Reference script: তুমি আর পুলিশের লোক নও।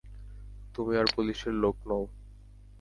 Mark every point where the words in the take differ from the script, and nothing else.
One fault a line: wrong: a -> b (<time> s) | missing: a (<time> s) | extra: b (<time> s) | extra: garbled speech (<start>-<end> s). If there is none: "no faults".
no faults